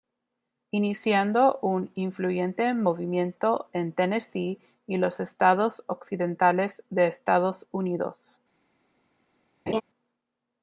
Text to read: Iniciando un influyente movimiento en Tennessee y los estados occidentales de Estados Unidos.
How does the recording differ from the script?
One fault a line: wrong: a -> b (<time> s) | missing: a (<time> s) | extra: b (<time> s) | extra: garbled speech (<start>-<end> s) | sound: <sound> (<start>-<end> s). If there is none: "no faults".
sound: laugh (9.7-9.8 s)